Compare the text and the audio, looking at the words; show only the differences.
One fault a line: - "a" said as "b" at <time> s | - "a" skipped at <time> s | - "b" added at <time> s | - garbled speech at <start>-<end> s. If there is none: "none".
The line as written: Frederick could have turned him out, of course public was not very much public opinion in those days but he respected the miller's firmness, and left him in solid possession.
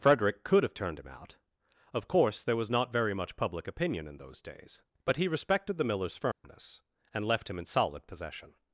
- "public" said as "there" at 2.4 s